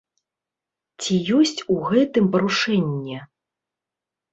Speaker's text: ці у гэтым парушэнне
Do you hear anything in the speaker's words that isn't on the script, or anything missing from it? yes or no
yes